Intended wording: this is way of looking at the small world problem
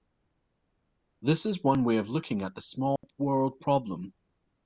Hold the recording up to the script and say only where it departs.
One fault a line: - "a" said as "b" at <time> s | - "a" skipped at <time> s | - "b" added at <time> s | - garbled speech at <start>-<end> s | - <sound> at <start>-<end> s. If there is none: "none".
- "one" added at 1.6 s
- dropout at 3.0-3.0 s